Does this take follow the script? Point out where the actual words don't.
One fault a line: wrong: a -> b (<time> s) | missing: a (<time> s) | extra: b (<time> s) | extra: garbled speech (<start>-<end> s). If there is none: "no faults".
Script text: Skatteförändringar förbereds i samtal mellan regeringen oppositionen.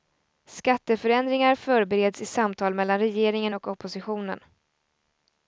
extra: och (3.5 s)